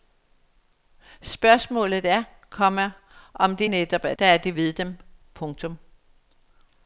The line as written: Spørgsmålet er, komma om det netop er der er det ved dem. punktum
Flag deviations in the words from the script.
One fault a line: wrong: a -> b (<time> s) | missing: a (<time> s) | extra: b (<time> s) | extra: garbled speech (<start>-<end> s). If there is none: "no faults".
no faults